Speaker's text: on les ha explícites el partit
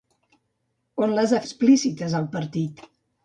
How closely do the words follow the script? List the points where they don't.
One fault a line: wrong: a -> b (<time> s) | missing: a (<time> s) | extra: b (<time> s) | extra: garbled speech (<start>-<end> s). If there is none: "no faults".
no faults